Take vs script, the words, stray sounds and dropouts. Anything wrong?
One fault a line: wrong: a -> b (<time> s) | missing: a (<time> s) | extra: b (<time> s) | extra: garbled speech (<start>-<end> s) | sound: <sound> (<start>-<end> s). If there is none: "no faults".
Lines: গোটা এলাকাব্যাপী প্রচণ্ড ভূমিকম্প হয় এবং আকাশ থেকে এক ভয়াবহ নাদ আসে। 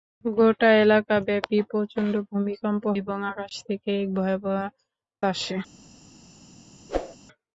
missing: হয় (2.8 s)
missing: নাদ (4.6 s)
sound: whoosh (6.9-7.2 s)